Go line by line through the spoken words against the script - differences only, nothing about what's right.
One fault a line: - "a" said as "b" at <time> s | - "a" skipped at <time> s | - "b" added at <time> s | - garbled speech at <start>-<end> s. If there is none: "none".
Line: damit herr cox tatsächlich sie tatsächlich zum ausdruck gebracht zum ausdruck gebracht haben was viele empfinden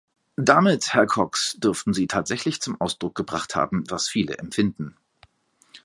- "tatsächlich" said as "dürften" at 1.6 s
- "zum ausdruck gebracht" skipped at 3.5 s